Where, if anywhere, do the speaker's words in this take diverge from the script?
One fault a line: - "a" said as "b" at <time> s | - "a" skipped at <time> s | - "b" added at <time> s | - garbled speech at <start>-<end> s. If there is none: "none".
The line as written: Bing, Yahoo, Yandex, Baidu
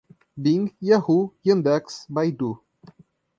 none